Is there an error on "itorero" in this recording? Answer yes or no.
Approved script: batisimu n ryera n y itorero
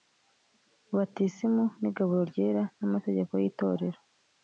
no